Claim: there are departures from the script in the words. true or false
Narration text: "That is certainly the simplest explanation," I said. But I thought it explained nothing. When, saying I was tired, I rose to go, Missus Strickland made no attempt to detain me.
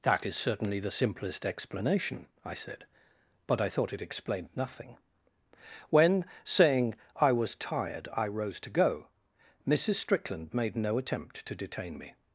false